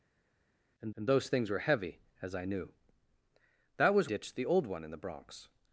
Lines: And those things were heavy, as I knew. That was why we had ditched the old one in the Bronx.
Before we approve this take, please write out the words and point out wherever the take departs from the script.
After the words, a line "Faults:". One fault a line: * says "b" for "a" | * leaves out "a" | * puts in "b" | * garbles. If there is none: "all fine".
And and those things were heavy, as I knew. That was ditched the old one in the Bronx.
Faults:
* puts in "and"
* leaves out "why we had"